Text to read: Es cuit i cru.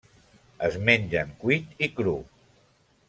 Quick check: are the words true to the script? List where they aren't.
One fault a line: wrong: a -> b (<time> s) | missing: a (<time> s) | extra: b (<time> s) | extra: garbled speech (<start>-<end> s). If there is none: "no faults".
extra: mengen (0.9 s)